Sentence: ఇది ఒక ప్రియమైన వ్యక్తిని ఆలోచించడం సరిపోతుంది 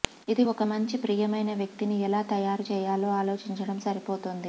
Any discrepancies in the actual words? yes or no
yes